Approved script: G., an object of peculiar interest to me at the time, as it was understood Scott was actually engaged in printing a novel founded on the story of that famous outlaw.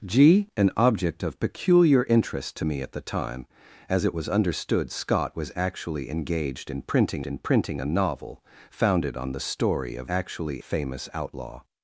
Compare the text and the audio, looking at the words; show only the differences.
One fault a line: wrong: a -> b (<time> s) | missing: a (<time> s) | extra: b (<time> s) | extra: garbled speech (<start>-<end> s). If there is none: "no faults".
extra: in printing (7.3 s)
wrong: that -> actually (10.1 s)